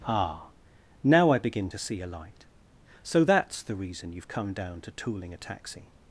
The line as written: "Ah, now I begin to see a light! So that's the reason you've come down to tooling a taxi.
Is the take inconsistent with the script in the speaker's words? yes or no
no